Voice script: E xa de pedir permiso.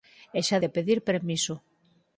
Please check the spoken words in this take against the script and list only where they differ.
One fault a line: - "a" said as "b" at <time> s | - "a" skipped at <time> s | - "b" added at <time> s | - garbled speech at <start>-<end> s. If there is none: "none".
none